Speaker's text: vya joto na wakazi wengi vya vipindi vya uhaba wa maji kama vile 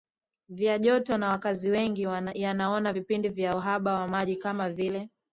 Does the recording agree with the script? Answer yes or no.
no